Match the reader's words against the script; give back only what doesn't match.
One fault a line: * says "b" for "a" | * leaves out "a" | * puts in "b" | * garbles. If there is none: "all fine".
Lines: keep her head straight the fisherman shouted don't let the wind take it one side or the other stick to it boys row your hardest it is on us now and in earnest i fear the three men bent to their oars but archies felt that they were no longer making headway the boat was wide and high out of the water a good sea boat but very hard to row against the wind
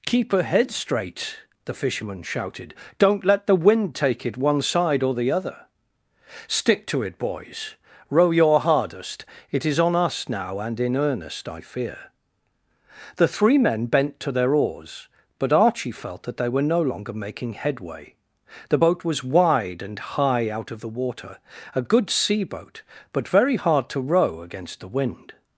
* says "archie" for "archies"